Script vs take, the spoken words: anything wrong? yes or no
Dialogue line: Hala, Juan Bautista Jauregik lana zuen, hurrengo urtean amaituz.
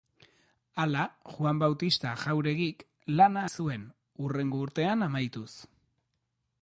no